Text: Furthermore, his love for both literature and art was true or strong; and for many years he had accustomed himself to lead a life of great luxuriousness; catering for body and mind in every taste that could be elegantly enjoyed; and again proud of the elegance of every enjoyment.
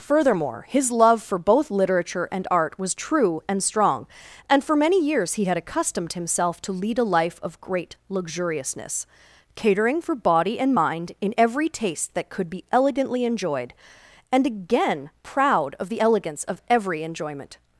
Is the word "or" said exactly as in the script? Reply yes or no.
no